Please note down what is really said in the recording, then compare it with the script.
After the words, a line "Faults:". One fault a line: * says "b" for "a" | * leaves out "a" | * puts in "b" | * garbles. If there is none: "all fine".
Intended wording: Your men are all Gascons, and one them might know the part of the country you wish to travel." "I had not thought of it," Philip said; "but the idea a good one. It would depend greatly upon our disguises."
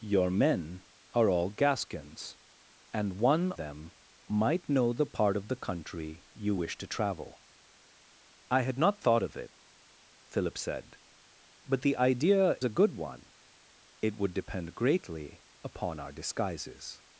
Your men are all Gascons, and one them might know the part of the country you wish to travel." "I had not thought of it," Philip said; "but the idea a good one. It would depend greatly upon our disguises."
Faults:
all fine